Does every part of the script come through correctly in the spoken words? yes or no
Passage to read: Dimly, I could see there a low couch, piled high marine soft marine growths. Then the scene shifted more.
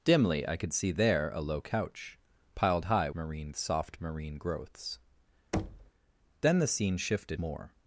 yes